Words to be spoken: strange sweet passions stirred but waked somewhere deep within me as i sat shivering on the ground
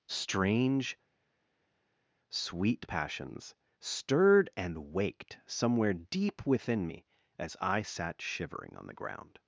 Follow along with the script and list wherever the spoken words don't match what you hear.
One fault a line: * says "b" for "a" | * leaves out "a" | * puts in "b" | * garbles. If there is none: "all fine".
* says "and" for "but"